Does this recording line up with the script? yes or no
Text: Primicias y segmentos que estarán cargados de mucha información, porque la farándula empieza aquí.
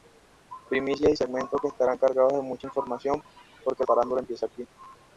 no